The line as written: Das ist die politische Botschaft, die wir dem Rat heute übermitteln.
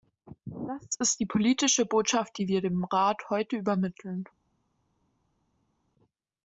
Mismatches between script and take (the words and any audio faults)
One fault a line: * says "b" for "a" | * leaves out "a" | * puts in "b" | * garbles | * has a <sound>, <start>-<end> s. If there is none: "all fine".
all fine